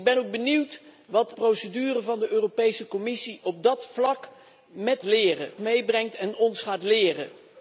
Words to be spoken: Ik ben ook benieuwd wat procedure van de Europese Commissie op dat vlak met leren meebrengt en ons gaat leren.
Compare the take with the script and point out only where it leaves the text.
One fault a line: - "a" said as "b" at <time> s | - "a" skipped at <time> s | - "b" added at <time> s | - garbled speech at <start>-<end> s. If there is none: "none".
none